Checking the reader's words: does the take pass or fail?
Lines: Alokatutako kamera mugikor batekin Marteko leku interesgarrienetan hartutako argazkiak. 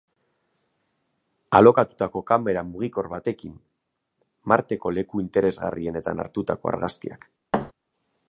pass